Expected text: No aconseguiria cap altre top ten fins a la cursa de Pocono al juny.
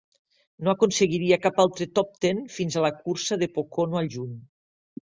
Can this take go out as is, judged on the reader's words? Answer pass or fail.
pass